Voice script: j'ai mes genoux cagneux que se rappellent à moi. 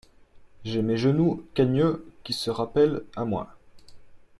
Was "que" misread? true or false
true